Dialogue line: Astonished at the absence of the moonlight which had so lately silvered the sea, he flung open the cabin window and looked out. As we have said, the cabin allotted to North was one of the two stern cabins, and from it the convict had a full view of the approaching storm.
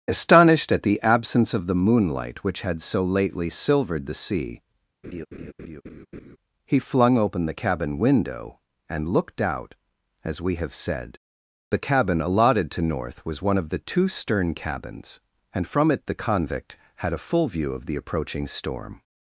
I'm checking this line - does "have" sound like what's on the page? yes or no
yes